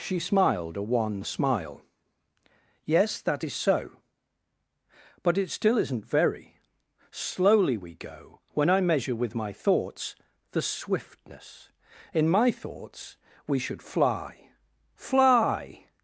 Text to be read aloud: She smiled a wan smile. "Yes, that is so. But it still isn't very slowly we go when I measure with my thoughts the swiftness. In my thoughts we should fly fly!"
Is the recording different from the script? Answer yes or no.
no